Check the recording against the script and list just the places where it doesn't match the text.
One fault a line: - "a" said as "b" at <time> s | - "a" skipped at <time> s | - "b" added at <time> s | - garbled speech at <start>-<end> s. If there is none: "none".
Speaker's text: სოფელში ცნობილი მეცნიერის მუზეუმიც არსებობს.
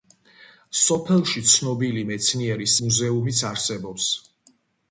none